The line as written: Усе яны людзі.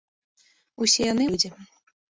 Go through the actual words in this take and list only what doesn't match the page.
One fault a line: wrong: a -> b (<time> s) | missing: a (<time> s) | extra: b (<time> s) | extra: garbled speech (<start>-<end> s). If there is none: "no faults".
no faults